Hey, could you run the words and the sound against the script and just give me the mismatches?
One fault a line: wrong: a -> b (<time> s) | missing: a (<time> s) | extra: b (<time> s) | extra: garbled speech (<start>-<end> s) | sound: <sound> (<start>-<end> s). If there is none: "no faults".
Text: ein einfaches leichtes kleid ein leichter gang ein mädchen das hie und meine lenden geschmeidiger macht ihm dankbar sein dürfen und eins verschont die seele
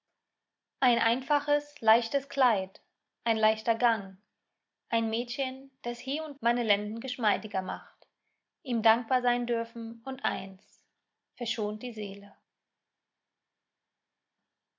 no faults